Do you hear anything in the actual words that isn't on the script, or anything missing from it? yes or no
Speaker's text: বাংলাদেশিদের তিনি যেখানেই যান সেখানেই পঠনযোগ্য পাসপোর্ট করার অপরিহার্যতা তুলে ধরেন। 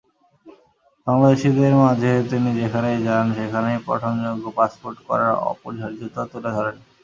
yes